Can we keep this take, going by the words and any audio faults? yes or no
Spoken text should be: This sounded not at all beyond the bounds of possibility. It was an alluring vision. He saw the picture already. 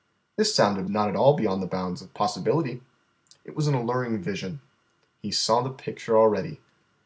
yes